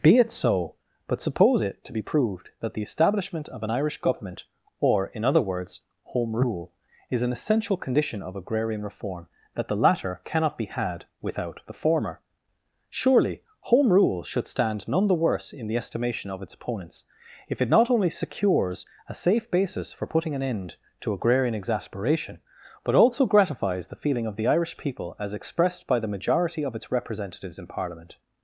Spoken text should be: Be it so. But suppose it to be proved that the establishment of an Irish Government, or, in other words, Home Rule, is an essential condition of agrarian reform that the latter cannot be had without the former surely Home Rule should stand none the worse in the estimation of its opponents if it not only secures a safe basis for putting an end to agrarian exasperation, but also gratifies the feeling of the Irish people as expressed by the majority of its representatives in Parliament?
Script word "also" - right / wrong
right